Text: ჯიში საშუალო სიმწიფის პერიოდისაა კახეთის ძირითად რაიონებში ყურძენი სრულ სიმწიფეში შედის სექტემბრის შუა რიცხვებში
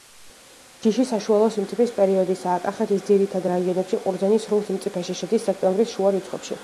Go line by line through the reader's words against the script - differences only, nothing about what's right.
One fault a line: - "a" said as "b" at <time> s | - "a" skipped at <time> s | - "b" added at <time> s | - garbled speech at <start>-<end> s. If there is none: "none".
none